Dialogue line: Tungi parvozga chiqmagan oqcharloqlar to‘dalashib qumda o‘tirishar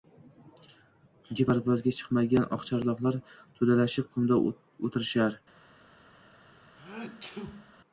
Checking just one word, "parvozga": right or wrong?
right